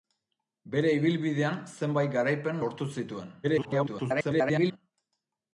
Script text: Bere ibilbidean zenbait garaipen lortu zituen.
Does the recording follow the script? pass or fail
fail